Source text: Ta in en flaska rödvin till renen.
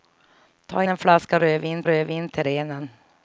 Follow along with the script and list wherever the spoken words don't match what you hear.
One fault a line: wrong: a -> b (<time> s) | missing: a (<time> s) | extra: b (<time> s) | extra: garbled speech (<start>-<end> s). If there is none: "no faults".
missing: in (0.8 s)
extra: rödvin (1.9 s)